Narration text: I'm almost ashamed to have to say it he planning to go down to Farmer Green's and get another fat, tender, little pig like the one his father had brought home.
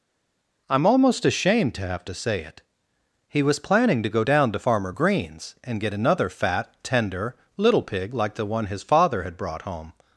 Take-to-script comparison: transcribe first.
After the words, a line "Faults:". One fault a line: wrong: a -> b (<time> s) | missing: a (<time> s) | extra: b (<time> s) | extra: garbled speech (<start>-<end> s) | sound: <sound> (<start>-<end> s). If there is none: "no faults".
I'm almost ashamed to have to say it he was planning to go down to Farmer Green's and get another fat, tender, little pig like the one his father had brought home.
Faults:
extra: was (3.4 s)